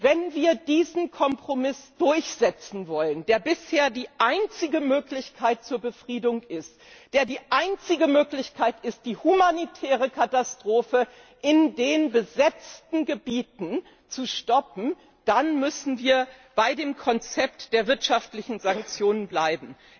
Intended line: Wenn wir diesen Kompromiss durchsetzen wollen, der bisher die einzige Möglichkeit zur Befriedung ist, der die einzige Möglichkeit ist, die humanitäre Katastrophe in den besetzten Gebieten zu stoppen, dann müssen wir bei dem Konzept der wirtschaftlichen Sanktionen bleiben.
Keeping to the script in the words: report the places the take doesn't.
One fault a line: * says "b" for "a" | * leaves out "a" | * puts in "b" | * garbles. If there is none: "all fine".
all fine